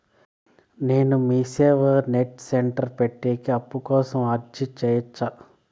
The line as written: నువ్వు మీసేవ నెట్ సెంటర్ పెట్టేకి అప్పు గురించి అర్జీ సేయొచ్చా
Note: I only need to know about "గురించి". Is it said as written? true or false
false